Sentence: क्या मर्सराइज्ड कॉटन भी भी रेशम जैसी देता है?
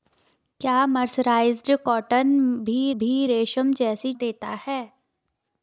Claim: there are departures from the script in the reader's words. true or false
false